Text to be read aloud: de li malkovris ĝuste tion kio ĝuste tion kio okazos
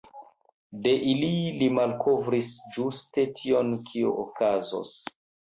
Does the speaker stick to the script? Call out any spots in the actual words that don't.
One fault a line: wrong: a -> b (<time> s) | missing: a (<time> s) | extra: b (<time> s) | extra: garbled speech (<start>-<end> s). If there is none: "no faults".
extra: ili (1.1 s)
missing: ĝuste tion kio (4.2 s)